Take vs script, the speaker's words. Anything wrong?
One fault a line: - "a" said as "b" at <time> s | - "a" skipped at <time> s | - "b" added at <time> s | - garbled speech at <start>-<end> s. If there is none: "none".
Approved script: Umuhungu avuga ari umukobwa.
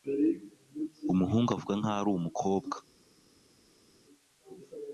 - "nkaho" added at 1.8 s